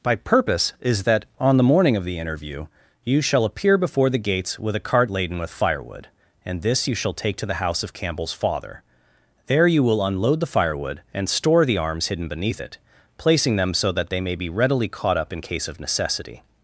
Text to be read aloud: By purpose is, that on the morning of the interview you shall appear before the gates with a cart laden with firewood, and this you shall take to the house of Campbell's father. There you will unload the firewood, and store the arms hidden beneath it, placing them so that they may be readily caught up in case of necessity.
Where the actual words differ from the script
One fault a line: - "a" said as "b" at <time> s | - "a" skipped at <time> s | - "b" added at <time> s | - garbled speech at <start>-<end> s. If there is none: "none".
none